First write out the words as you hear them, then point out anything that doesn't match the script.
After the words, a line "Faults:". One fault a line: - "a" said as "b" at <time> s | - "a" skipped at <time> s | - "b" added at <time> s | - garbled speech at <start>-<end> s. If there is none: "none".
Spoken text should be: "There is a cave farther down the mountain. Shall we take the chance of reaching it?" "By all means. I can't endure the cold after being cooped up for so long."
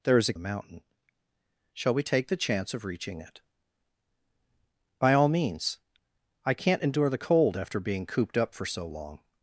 "There is a the mountain. Shall we take the chance of reaching it?" "By all means. I can't endure the cold after being cooped up for so long."
Faults:
- "cave farther down" skipped at 0.3 s